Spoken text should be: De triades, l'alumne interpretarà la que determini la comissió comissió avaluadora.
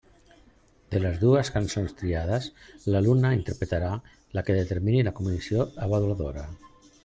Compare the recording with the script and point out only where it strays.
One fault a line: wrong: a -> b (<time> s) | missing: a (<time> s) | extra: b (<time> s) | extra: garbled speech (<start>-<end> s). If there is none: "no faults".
extra: les dues cançons (1.0 s)
missing: comissió (5.7 s)